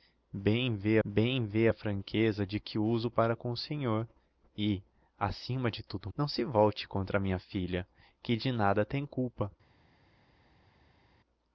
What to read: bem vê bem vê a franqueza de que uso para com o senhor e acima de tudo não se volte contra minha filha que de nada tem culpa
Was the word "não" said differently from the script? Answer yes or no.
no